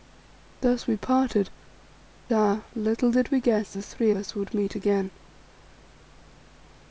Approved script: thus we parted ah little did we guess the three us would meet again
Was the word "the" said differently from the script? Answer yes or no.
no